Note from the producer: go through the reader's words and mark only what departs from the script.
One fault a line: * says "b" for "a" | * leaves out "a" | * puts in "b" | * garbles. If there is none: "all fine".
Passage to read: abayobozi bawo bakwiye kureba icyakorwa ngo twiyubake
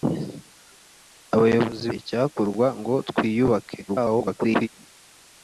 * leaves out "bawo bakwiye kureba"
* garbles